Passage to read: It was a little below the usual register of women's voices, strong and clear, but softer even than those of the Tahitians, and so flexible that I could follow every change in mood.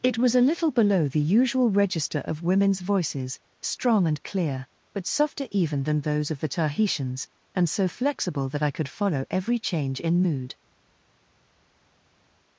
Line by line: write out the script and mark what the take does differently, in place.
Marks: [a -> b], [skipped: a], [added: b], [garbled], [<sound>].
It was a little below the usual register of women's voices, strong and clear, but softer even than those of the Tahitians, and so flexible that I could follow every change in mood.